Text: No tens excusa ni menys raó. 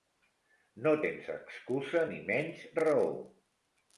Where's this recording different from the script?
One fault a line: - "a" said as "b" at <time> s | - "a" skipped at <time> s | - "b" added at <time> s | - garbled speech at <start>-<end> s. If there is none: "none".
none